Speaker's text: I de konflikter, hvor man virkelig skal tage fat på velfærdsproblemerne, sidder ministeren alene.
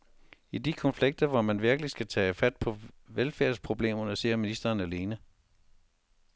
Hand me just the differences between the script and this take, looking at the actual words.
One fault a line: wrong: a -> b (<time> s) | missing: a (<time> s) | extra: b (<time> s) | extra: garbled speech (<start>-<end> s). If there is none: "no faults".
no faults